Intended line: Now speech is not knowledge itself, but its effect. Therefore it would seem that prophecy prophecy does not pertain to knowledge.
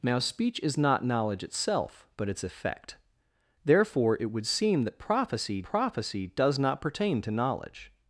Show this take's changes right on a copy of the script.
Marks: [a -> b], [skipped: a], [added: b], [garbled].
Now speech is not knowledge itself, but its effect. Therefore it would seem that prophecy prophecy does not pertain to knowledge.